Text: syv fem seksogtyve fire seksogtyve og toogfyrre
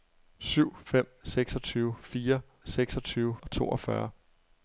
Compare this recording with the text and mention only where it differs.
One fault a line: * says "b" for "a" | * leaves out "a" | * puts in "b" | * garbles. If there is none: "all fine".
all fine